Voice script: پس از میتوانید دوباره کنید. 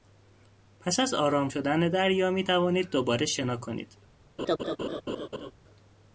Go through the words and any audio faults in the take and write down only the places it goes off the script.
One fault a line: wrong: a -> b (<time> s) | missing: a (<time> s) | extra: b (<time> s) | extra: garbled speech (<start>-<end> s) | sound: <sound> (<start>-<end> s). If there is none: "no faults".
extra: آرام شدن دریا (1.1 s)
extra: شنا (3.3 s)
sound: laugh (4.4-5.5 s)